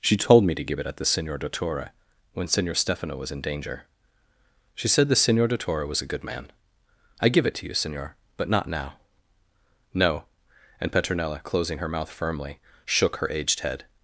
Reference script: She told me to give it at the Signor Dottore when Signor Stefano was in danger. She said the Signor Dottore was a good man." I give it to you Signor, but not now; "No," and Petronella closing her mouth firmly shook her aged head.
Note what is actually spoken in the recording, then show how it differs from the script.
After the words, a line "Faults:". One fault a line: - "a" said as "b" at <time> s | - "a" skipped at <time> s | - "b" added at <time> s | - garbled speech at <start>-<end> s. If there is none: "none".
She told me to give it at the Signor Dottore when Signor Stefano was in danger. She said the Signor Dottore was a good man." I give it to you Signor, but not now; "No," and Petronella closing her mouth firmly shook her aged head.
Faults:
none